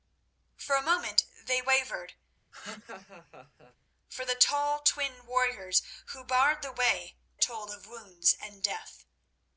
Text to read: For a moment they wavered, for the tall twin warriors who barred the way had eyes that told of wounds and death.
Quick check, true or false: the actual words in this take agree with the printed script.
false